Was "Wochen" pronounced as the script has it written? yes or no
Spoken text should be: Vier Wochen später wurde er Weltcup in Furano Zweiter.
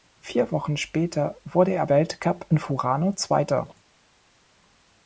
yes